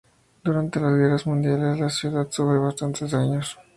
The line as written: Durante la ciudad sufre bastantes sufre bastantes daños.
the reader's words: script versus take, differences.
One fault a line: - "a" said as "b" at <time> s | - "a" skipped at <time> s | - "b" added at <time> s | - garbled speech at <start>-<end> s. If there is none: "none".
- "las guerras mundiales" added at 0.8 s
- "sufre bastantes" skipped at 3.1 s